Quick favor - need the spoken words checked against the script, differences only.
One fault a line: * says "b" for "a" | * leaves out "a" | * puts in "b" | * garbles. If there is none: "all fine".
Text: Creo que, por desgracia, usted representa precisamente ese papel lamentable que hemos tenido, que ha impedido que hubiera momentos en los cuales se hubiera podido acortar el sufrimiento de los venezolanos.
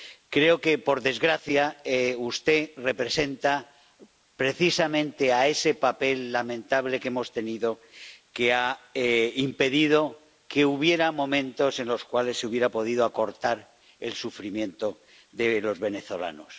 all fine